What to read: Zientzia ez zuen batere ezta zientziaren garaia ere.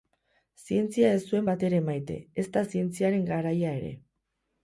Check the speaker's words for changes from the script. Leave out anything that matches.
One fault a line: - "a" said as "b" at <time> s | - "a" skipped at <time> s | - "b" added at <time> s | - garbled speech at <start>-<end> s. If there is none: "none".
- "maite" added at 1.9 s